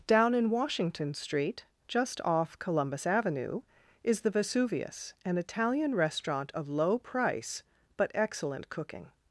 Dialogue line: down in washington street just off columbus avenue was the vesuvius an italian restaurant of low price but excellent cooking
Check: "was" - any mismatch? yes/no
yes